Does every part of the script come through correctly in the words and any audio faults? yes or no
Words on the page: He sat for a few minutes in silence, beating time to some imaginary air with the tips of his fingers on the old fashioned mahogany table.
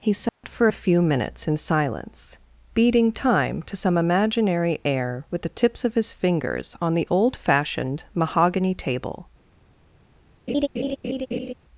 no